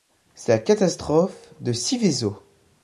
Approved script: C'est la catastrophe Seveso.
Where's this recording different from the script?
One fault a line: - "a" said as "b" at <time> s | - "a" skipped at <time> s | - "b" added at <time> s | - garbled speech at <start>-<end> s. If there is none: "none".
- "de" added at 1.6 s